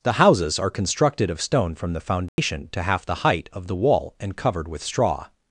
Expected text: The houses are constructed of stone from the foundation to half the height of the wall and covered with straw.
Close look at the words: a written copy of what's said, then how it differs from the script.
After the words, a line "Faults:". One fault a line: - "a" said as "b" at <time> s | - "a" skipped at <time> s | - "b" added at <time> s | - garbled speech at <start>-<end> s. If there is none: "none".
The houses are constructed of stone from the foundation to half the height of the wall and covered with straw.
Faults:
none